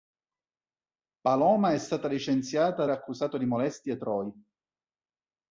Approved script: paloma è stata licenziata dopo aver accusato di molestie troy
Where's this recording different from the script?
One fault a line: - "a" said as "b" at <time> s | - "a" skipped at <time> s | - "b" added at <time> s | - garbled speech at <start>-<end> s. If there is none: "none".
- "dopo aver" skipped at 2.9 s